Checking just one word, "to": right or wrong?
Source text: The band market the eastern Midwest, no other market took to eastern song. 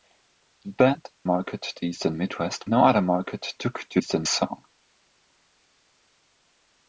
right